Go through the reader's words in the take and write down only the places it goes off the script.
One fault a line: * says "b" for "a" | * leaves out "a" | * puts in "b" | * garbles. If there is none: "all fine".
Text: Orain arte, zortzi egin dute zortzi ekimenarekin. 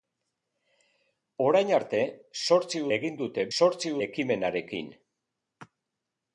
all fine